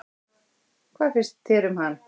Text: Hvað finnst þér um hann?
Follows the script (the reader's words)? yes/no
yes